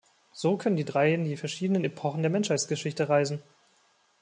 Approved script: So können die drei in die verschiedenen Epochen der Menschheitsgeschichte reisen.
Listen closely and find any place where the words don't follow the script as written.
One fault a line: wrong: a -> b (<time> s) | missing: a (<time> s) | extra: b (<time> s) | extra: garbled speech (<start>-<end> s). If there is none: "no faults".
no faults